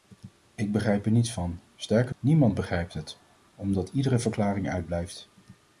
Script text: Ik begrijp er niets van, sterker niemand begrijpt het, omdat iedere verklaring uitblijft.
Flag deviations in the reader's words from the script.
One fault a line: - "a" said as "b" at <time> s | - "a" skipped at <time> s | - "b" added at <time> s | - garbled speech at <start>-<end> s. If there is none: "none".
none